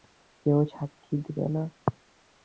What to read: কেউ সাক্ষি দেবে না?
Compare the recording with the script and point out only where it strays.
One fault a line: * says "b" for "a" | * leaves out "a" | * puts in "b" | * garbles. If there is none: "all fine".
all fine